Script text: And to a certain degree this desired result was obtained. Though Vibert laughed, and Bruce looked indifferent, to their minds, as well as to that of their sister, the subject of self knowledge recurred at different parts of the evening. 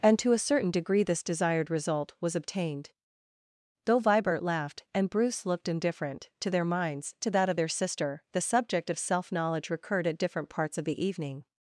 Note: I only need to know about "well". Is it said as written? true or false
false